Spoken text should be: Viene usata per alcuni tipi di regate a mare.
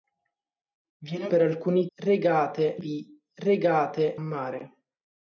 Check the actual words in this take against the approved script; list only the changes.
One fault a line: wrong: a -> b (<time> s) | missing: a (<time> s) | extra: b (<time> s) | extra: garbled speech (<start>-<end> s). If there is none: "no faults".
missing: usata (1.3 s)
wrong: tipi -> regate (2.0 s)
missing: a (4.2 s)